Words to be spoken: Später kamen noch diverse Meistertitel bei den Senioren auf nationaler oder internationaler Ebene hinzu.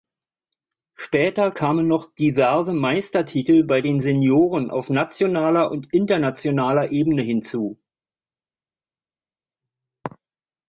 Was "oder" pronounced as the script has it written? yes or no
no